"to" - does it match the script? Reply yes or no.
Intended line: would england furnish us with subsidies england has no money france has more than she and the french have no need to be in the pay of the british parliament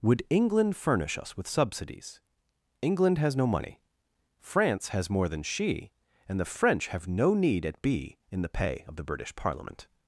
no